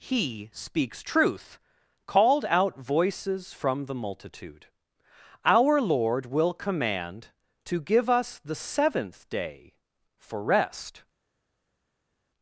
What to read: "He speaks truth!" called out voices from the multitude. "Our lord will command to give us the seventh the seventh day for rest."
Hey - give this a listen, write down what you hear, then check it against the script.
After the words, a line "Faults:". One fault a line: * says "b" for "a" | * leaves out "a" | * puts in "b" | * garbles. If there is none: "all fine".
"He speaks truth!" called out voices from the multitude. "Our lord will command to give us the seventh day for rest."
Faults:
* leaves out "the seventh"